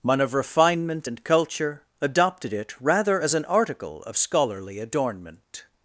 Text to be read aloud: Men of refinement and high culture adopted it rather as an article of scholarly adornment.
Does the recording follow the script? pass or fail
fail